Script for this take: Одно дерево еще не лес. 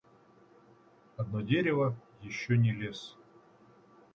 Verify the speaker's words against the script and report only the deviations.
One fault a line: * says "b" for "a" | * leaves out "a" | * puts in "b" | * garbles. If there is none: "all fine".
all fine